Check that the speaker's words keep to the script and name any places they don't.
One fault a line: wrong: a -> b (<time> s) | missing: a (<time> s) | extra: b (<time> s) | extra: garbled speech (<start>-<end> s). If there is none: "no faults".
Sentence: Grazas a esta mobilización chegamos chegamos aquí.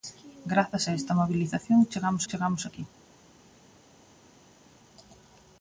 no faults